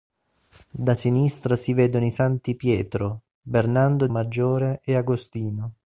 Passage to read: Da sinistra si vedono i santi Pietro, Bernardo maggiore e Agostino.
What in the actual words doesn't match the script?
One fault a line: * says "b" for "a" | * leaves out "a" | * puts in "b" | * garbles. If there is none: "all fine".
all fine